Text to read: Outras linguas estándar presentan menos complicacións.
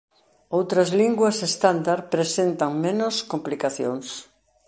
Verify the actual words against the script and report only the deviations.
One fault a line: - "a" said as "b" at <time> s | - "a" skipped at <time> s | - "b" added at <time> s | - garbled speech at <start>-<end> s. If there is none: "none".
none